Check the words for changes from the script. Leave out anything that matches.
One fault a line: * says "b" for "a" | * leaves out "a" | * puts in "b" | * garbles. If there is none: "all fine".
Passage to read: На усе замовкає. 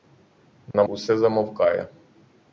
all fine